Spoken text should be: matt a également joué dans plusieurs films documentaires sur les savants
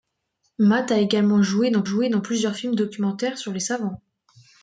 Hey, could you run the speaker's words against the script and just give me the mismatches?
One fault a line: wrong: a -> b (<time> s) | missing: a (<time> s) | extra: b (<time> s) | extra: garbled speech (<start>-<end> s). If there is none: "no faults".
extra: joué dans (1.8 s)